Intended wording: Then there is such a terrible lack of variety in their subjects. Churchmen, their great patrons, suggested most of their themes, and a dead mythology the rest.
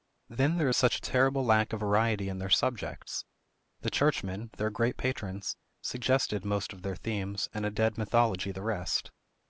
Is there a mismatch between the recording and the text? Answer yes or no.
yes